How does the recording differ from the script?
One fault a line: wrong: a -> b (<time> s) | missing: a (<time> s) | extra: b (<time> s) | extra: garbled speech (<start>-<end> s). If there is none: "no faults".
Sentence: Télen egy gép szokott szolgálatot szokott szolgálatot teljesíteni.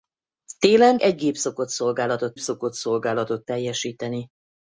no faults